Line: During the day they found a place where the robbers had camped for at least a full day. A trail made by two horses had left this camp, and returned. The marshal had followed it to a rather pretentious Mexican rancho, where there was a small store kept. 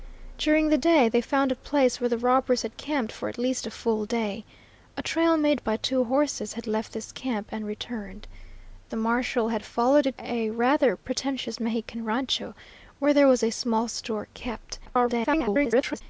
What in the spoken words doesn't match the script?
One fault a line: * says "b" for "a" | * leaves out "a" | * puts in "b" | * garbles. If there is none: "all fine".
* leaves out "to"
* garbles